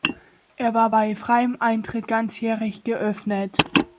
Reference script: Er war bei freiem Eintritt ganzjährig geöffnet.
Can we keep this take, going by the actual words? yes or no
yes